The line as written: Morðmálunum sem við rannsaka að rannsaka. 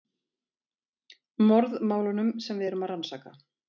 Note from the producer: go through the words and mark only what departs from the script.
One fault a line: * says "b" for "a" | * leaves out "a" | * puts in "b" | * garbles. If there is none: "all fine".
* says "erum" for "rannsaka"